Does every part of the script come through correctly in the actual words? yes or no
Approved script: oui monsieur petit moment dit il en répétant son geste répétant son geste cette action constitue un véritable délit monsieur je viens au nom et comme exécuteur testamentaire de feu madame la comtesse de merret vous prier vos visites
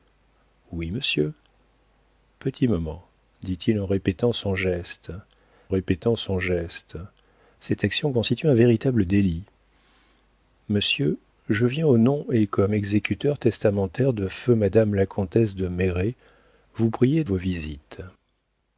yes